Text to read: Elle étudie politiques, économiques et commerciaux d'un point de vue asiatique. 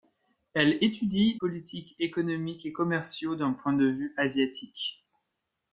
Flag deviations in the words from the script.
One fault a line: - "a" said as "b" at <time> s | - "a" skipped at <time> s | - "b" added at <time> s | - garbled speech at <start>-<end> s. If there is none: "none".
none